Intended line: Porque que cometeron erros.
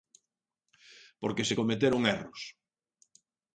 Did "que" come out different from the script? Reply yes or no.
yes